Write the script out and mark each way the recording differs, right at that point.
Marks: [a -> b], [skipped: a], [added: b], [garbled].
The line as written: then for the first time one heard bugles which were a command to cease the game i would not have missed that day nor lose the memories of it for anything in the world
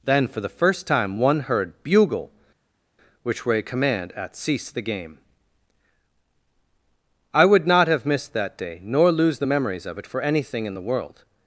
then for the first time one heard [bugles -> bugle] which were a command [to -> at] cease the game i would not have missed that day nor lose the memories of it for anything in the world